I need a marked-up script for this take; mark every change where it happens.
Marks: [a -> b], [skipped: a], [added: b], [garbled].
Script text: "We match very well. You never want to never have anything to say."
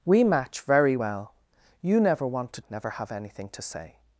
"We match very well. You never want to never have anything to say."